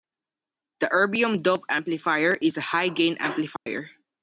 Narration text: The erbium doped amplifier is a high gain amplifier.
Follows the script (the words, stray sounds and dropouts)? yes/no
no